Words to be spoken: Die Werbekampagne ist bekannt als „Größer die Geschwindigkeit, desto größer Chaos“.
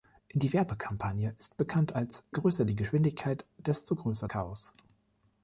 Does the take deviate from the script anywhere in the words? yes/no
no